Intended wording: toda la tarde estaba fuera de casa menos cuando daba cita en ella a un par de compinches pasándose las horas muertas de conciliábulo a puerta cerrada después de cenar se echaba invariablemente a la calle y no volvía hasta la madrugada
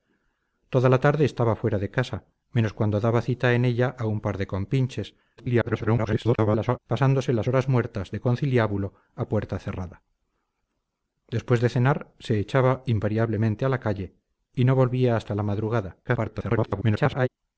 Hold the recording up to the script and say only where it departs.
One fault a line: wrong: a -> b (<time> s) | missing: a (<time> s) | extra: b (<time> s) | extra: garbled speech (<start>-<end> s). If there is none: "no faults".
extra: garbled speech (5.4-6.8 s)
extra: garbled speech (16.0-17.3 s)